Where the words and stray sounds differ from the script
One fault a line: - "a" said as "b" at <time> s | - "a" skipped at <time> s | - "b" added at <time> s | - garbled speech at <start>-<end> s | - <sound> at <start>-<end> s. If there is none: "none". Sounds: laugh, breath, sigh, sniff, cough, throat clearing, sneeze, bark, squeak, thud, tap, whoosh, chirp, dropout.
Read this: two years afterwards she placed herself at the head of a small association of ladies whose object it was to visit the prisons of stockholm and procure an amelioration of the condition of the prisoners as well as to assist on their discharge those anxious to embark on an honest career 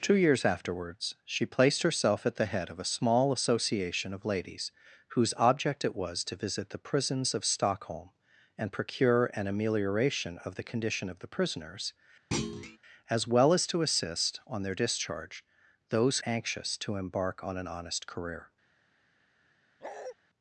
- thud at 12.3-12.8 s
- bark at 19.8-20.2 s